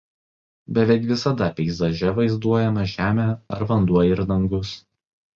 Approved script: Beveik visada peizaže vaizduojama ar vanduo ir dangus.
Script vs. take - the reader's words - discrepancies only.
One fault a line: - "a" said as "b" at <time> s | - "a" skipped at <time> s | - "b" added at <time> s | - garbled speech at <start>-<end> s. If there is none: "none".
- "žemė" added at 2.9 s